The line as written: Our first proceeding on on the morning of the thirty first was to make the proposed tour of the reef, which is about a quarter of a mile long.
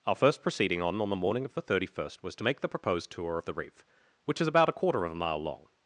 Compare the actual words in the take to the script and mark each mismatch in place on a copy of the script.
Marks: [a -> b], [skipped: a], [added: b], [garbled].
Our first proceeding on on the morning of the thirty first was to make the proposed tour of the reef, which is about a quarter of a mile long.